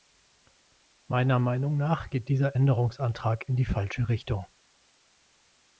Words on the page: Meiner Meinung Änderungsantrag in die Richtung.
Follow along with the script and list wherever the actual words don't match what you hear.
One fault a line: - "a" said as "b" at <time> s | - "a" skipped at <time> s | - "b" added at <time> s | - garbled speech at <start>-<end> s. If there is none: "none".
- "nach geht dieser" added at 1.8 s
- "falsche" added at 3.6 s